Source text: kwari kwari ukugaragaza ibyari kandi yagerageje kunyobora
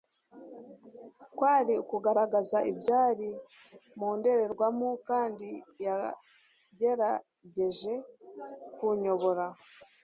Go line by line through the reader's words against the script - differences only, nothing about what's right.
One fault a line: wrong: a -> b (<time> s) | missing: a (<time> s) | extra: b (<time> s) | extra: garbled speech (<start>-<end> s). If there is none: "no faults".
missing: kwari (1.7 s)
extra: mu ndorerwamo (4.0 s)